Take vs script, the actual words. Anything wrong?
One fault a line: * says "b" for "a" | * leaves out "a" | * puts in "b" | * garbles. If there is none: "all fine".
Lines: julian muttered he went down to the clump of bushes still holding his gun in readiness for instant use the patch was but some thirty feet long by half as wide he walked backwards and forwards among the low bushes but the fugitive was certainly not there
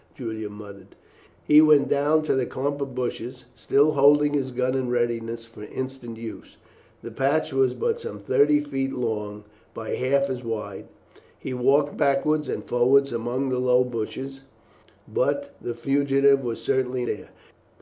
* leaves out "not"